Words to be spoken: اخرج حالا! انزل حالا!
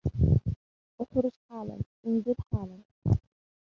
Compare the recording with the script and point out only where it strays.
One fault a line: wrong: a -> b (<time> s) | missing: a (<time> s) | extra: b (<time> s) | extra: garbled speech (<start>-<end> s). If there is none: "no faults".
no faults